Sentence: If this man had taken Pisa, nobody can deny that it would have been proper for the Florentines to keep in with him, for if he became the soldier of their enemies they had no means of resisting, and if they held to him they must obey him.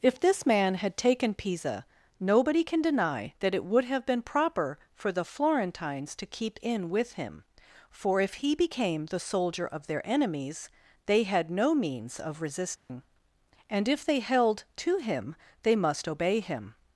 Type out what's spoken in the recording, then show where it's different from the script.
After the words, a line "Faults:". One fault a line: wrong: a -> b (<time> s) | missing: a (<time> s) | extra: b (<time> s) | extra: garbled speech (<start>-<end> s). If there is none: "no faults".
If this man had taken Pisa, nobody can deny that it would have been proper for the Florentines to keep in with him, for if he became the soldier of their enemies they had no means of resisting, and if they held to him they must obey him.
Faults:
no faults